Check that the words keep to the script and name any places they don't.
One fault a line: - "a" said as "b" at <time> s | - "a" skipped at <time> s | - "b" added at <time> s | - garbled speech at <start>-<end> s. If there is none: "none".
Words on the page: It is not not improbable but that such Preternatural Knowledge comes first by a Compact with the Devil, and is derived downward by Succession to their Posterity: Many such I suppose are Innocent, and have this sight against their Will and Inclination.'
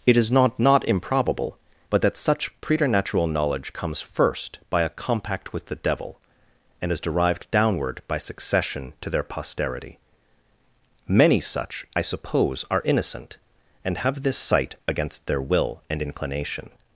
none